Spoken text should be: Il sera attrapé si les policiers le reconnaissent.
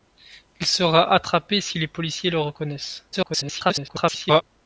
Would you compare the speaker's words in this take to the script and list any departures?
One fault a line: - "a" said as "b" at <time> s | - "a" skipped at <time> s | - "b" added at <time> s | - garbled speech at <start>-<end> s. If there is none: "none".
- garbled speech at 3.1-4.4 s